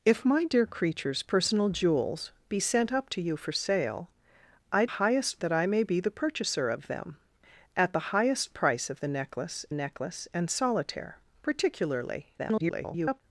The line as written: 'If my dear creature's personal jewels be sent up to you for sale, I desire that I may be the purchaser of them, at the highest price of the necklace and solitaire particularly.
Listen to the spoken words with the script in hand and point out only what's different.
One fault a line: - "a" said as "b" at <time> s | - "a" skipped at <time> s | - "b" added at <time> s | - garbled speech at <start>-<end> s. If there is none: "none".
- "desire" said as "highest" at 4.9 s
- "necklace" added at 9.7 s
- garbled speech at 12.4-13.2 s